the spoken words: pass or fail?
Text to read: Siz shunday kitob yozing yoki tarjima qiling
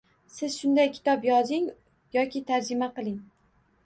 pass